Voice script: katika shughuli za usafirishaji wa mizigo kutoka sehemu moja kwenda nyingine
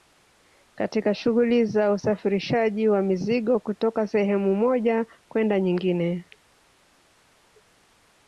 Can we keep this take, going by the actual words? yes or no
yes